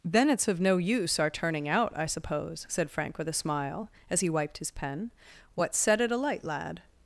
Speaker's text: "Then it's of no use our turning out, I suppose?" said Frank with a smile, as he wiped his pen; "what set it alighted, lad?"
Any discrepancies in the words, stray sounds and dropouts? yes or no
yes